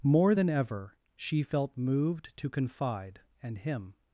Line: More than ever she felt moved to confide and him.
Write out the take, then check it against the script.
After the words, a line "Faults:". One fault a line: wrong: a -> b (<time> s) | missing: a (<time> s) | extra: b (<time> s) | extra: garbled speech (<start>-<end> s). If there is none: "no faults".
More than ever she felt moved to confide and him.
Faults:
no faults